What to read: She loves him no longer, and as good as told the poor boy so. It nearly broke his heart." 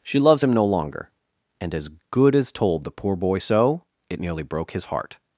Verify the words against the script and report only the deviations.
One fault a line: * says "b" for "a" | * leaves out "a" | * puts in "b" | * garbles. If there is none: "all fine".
all fine